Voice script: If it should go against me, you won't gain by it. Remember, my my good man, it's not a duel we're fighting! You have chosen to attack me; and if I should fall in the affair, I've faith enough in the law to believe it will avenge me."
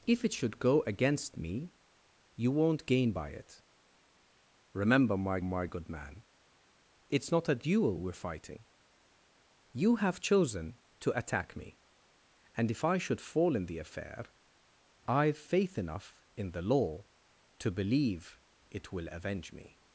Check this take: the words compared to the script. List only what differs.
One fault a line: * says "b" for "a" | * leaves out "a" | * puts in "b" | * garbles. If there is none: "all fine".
all fine